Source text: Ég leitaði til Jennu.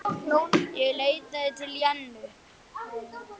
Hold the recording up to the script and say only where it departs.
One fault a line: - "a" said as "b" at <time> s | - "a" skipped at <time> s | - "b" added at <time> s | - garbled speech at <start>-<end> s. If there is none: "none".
none